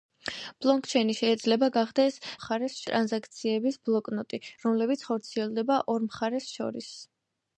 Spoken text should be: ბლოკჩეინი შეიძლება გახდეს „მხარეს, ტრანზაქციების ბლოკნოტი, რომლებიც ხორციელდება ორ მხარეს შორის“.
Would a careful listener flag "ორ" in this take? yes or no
no